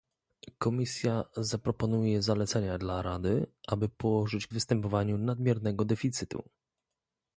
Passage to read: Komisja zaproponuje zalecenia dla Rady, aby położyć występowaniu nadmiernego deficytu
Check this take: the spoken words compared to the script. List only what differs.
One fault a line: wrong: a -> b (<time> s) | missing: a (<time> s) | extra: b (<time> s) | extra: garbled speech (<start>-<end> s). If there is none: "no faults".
no faults